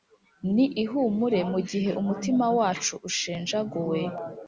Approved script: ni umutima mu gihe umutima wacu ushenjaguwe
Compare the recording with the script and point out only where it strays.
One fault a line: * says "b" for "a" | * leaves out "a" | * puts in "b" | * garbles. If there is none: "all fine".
* says "ihumure" for "umutima"